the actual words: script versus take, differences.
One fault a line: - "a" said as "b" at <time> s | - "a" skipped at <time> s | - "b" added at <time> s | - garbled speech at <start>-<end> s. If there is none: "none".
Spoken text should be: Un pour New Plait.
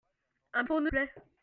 none